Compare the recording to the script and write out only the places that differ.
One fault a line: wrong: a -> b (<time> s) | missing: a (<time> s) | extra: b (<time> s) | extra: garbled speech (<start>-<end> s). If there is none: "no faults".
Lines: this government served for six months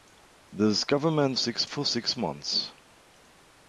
wrong: served -> six (1.4 s)